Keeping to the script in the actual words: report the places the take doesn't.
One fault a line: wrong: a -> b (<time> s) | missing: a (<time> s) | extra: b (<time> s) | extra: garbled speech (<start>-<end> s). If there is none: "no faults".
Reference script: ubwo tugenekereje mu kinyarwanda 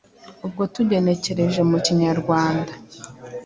no faults